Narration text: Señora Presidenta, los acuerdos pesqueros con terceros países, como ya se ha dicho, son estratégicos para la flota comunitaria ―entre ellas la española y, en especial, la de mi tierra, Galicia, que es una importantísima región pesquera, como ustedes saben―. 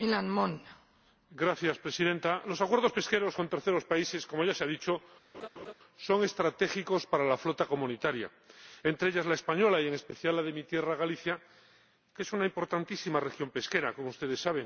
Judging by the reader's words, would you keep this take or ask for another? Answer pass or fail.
pass